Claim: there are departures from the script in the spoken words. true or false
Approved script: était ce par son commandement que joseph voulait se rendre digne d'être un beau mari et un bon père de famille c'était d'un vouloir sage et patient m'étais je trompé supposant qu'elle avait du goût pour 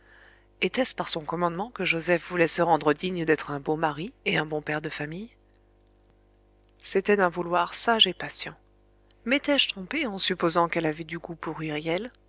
true